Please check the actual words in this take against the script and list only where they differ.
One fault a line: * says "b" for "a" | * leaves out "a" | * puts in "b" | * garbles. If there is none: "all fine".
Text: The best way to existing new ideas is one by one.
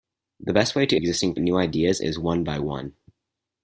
all fine